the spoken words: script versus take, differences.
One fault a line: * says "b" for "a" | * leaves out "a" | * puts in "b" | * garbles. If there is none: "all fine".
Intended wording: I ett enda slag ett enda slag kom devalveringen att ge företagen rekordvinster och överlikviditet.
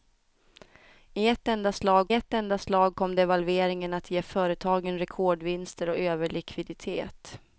all fine